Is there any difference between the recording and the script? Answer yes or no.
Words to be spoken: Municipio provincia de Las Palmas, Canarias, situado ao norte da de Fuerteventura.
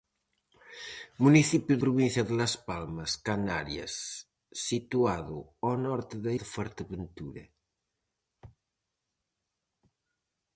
no